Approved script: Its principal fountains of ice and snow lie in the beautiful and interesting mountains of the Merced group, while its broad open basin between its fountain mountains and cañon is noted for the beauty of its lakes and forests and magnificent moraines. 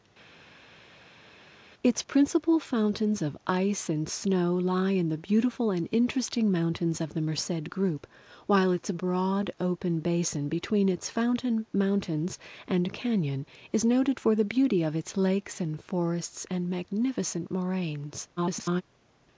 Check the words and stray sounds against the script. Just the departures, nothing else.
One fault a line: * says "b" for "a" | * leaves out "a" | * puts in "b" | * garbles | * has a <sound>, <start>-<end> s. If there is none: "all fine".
* garbles